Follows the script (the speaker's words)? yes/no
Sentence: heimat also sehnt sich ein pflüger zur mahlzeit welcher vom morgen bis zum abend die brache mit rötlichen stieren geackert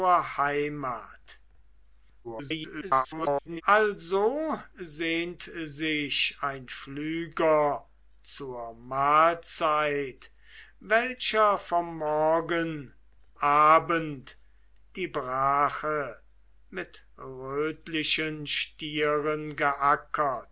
no